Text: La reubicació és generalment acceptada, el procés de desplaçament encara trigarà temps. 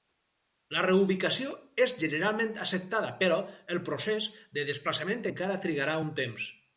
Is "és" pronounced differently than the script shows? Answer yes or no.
no